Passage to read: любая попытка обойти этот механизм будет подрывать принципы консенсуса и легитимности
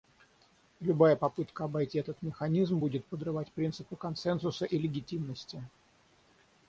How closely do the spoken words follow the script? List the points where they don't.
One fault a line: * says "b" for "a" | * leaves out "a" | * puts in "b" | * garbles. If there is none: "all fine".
all fine